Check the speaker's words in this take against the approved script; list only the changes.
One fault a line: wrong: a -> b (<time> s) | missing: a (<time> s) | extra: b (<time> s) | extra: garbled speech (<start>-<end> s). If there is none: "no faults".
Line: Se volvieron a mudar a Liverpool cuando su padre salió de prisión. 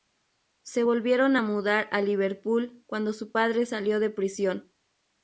no faults